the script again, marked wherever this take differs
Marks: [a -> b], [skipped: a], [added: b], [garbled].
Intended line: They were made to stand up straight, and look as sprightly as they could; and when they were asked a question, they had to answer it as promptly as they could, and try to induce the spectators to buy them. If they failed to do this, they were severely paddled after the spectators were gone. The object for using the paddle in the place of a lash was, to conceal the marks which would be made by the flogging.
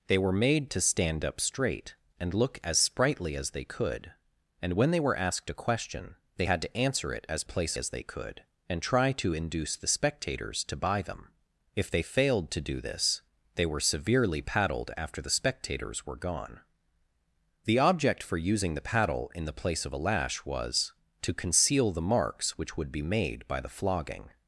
They were made to stand up straight, and look as sprightly as they could; and when they were asked a question, they had to answer it as [promptly -> place] as they could, and try to induce the spectators to buy them. If they failed to do this, they were severely paddled after the spectators were gone. The object for using the paddle in the place of a lash was, to conceal the marks which would be made by the flogging.